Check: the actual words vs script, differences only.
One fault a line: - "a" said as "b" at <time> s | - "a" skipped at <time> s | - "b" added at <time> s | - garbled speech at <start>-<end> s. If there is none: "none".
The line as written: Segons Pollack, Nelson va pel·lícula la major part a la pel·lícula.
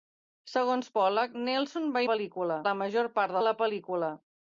none